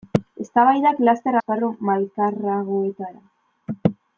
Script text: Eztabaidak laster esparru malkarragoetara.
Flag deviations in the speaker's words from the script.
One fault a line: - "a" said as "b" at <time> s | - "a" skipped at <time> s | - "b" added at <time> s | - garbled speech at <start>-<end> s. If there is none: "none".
none